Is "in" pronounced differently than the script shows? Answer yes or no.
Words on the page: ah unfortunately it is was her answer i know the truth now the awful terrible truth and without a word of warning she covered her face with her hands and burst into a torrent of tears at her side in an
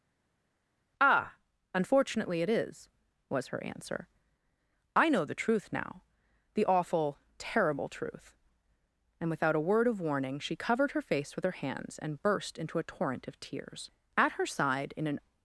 no